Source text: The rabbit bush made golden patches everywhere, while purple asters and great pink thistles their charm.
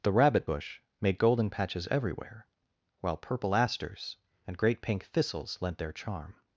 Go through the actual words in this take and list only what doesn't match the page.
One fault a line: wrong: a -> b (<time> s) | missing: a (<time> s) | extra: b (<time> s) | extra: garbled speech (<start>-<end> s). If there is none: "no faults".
extra: lent (5.6 s)